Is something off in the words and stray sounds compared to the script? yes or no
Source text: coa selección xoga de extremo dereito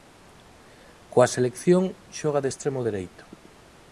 no